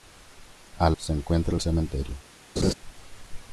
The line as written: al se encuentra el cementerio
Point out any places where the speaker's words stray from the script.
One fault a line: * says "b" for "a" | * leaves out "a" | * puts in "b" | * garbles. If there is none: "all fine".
all fine